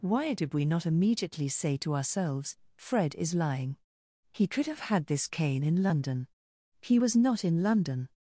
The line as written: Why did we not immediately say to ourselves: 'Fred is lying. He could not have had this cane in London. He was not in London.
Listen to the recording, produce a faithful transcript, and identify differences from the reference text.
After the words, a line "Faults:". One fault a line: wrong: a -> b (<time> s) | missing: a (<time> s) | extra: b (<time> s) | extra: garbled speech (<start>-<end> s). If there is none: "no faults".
Why did we not immediately say to ourselves: 'Fred is lying. He could have had this cane in London. He was not in London.
Faults:
missing: not (4.7 s)